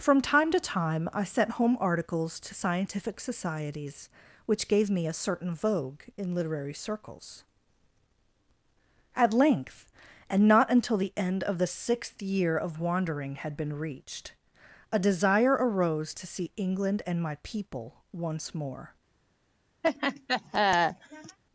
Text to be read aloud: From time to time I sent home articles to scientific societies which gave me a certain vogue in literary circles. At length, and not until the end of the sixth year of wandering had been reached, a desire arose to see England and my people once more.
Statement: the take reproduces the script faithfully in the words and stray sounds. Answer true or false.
false